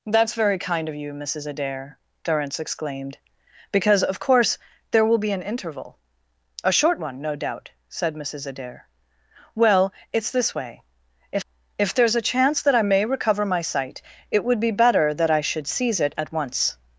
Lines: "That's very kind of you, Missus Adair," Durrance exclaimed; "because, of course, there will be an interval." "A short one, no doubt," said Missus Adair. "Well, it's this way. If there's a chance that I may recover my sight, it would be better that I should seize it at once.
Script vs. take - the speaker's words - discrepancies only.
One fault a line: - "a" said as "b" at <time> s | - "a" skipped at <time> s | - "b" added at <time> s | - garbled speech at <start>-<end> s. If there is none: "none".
- "If" added at 11.8 s